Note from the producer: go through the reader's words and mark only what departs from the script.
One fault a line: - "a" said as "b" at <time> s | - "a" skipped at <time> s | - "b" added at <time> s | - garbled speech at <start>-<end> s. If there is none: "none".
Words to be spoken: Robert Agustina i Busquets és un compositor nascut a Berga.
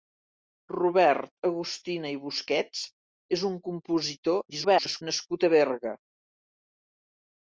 - garbled speech at 4.5-5.0 s